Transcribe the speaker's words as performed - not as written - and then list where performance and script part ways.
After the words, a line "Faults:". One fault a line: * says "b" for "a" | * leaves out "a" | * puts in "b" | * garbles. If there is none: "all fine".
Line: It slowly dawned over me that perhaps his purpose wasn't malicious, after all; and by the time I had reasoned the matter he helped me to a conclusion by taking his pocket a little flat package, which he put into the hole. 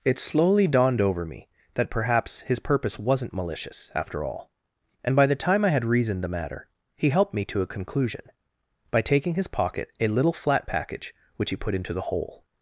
It slowly dawned over me that perhaps his purpose wasn't malicious, after all; and by the time I had reasoned the matter he helped me to a conclusion by taking his pocket a little flat package, which he put into the hole.
Faults:
all fine